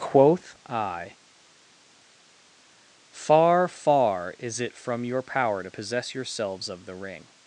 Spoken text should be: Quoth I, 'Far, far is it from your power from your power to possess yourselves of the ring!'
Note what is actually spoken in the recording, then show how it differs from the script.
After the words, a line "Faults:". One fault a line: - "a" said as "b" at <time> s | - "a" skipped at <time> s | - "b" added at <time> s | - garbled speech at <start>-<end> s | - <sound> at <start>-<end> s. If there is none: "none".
Quoth I, 'Far, far is it from your power to possess yourselves of the ring!'
Faults:
- "from your power" skipped at 5.6 s